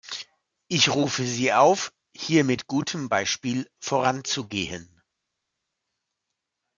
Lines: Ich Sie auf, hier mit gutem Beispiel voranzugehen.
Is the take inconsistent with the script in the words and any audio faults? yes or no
yes